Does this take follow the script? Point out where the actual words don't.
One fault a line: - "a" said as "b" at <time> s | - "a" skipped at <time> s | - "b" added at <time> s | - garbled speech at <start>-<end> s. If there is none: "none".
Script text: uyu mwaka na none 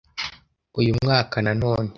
none